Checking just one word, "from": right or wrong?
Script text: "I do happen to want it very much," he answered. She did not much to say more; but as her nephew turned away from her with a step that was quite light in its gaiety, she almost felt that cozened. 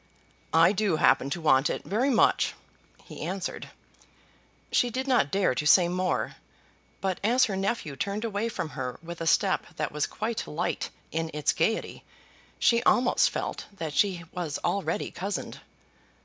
right